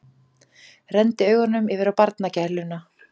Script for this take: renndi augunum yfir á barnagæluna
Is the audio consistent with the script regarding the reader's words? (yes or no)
yes